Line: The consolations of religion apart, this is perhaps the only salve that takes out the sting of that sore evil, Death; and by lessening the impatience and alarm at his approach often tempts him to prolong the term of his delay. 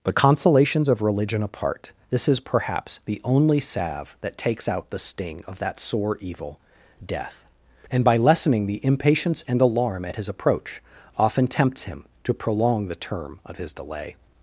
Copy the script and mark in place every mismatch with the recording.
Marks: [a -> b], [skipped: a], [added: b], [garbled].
[The -> But] consolations of religion apart, this is perhaps the only salve that takes out the sting of that sore evil, Death; and by lessening the impatience and alarm at his approach often tempts him to prolong the term of his delay.